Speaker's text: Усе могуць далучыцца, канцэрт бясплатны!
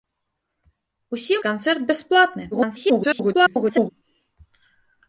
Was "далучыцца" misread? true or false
true